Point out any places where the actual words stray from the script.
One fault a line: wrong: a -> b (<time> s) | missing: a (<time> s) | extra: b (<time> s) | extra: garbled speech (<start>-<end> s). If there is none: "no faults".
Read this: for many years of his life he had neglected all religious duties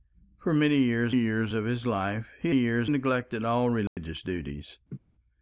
extra: years (1.1 s)
wrong: had -> years (2.5 s)